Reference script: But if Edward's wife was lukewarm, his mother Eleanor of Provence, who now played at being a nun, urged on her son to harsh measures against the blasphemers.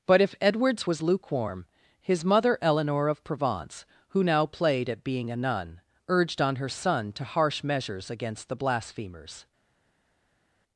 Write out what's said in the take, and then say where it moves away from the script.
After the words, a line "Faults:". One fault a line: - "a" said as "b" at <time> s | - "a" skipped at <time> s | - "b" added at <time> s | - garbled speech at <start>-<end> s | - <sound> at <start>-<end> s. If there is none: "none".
But if Edward's was lukewarm, his mother Eleanor of Provence, who now played at being a nun, urged on her son to harsh measures against the blasphemers.
Faults:
- "wife" skipped at 0.9 s